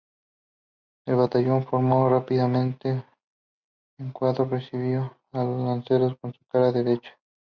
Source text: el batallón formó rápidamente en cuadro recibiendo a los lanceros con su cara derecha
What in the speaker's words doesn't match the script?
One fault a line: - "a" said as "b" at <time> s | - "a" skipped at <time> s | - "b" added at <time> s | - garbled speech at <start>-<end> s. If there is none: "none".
none